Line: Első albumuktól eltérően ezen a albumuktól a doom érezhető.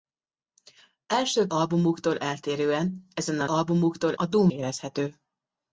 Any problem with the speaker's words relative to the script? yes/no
no